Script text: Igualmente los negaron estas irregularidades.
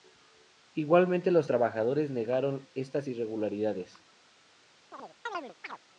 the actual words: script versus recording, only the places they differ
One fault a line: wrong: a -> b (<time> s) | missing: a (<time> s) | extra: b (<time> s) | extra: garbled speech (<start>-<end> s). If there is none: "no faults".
extra: trabajadores (1.5 s)